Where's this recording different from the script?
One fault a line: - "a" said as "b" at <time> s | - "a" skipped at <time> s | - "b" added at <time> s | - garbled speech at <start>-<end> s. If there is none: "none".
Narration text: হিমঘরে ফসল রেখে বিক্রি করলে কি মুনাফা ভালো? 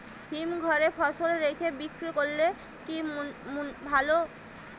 - "মুনাফা" skipped at 3.0 s